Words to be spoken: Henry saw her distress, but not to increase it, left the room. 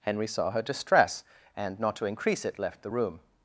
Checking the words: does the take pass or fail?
fail